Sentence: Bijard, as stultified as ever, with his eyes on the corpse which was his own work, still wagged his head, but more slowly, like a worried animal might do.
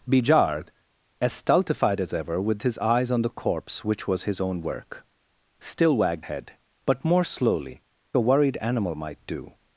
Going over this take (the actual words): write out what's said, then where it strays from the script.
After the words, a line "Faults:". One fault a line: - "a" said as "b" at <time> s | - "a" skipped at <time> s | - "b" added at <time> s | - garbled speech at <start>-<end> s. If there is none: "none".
Bijard, as stultified as ever, with his eyes on the corpse which was his own work, still wagged head, but more slowly, a worried animal might do.
Faults:
- "his" skipped at 6.2 s
- "like" skipped at 7.8 s